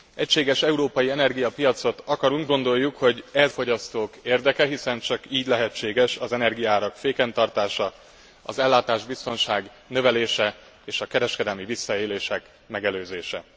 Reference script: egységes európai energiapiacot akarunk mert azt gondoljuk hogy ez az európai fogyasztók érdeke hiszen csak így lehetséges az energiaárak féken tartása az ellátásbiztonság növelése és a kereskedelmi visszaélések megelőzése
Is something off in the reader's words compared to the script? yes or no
yes